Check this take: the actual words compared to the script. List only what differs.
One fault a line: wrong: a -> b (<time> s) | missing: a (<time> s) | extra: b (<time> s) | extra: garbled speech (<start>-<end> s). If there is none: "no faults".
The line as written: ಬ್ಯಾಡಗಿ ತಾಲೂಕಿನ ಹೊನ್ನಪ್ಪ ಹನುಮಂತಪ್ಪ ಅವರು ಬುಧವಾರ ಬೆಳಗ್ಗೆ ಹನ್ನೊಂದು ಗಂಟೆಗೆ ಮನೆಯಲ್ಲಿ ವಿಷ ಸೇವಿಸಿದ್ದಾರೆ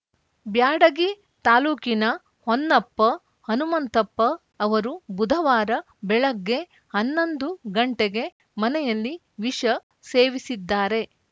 no faults